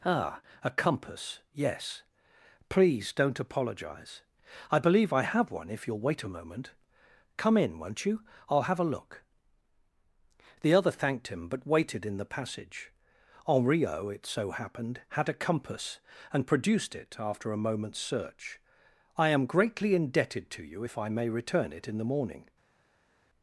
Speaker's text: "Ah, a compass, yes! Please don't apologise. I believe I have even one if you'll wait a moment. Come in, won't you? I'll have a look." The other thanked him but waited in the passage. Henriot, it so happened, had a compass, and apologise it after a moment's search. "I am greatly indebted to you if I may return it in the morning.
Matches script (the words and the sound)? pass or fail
fail